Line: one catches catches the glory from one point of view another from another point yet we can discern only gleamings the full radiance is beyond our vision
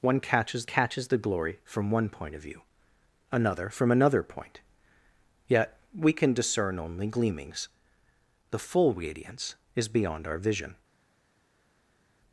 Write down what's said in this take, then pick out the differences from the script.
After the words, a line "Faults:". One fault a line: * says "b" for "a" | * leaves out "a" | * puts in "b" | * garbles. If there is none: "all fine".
one catches catches the glory from one point of view another from another point yet we can discern only gleamings the full radiance is beyond our vision
Faults:
all fine